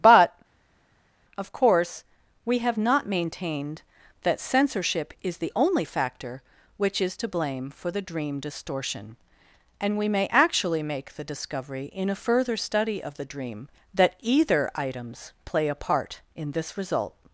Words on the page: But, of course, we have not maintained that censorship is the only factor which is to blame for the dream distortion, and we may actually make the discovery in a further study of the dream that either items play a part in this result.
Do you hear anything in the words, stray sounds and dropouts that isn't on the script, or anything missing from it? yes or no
no